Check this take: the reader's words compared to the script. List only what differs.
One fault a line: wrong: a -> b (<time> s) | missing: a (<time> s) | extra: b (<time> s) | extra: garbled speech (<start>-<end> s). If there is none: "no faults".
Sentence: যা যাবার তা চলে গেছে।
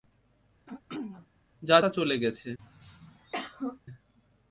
missing: যাবার (1.8 s)